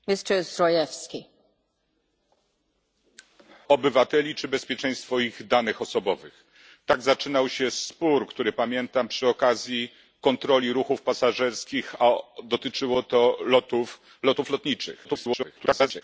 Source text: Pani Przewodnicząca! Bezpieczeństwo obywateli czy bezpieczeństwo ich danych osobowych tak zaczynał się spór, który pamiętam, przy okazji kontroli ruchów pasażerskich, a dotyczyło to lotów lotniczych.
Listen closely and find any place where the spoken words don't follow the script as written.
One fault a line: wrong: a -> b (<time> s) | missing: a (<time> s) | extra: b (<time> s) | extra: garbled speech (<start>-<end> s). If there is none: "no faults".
missing: Bezpieczeństwo (1.2 s)
extra: garbled speech (15.0-16.0 s)